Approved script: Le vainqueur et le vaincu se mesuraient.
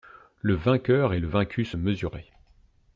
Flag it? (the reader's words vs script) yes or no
no